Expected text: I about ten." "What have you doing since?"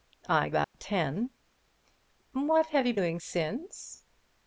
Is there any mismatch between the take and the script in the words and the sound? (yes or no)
yes